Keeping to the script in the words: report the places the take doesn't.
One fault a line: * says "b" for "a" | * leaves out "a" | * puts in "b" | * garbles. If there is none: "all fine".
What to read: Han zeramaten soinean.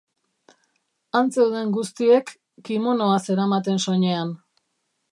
* puts in "zeuden guztiek kimonoa"